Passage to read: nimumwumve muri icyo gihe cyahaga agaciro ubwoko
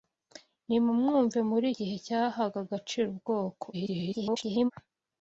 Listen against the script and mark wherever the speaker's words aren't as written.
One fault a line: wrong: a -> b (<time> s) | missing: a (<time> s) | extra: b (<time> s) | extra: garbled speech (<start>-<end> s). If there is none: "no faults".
missing: icyo (1.7 s)
extra: garbled speech (3.7-4.7 s)